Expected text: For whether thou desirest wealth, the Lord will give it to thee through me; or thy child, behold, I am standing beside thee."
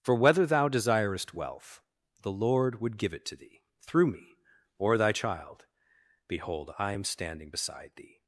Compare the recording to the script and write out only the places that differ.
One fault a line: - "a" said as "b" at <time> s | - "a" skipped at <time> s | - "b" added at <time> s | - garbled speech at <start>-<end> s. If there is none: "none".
- "will" said as "would" at 2.8 s